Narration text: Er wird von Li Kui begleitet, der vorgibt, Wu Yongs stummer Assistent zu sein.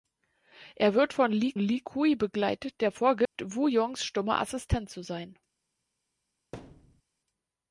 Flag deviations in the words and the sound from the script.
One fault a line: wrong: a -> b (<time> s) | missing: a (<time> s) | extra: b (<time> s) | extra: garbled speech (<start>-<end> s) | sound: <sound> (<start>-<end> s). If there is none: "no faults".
extra: Li (1.6 s)
sound: dropout (3.3-3.4 s)
sound: thud (6.5-7.0 s)